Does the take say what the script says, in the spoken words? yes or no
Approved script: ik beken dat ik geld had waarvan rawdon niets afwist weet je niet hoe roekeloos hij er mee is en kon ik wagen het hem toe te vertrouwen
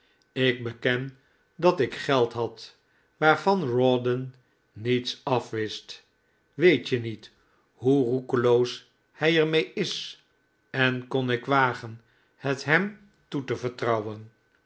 yes